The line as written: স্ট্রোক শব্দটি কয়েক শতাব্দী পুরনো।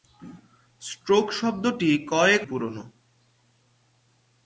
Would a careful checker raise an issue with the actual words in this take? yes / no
yes